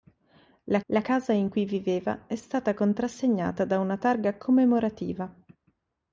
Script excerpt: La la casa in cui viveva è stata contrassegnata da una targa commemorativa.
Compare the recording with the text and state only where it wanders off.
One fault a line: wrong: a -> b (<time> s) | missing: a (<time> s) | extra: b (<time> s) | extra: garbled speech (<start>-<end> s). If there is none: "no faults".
no faults